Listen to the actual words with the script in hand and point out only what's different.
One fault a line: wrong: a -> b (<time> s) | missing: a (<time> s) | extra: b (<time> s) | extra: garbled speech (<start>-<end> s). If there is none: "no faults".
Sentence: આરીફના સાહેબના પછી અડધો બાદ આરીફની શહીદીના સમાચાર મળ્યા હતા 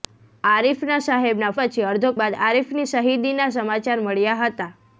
no faults